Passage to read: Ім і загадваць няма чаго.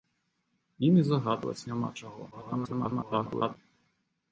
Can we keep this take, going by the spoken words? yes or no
no